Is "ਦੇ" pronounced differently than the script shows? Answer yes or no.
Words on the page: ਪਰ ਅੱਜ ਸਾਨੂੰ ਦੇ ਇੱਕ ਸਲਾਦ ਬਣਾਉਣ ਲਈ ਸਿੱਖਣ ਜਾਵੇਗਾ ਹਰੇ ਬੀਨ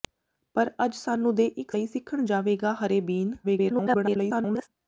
no